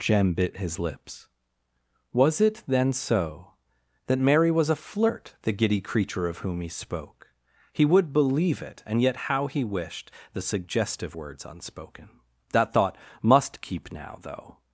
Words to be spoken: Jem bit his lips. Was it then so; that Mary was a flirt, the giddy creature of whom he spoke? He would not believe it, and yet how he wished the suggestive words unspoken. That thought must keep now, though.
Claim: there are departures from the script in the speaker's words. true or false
true